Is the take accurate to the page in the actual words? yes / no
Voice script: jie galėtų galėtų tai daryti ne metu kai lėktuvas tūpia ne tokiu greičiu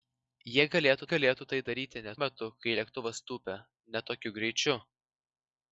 yes